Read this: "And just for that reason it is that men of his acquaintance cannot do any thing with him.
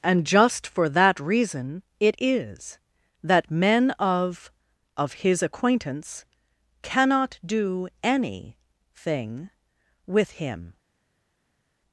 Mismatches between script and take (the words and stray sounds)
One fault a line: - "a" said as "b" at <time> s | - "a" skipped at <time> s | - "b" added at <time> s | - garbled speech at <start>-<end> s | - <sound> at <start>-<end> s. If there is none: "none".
- "of" added at 5.0 s